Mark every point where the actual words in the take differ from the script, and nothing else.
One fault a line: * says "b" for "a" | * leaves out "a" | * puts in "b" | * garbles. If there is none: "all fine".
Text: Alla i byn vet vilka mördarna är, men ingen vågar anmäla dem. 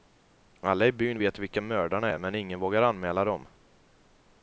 all fine